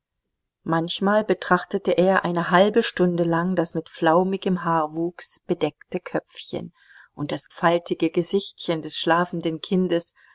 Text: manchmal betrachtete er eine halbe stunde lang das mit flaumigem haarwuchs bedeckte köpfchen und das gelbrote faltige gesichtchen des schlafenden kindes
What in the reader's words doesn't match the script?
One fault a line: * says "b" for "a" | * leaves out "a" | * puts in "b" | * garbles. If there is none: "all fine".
* leaves out "gelbrote"